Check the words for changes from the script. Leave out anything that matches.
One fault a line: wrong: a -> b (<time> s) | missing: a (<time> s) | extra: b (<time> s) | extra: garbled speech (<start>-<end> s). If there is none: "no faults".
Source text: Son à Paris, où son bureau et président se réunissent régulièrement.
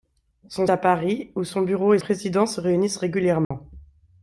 no faults